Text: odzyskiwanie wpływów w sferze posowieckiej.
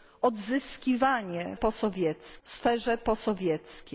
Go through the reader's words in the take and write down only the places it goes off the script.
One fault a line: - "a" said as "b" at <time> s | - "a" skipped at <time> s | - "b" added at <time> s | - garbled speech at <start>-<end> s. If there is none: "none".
- "wpływów" said as "posowieckiej" at 1.5 s